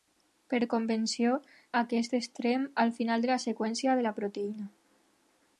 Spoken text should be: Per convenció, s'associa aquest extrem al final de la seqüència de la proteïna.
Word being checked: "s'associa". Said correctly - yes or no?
no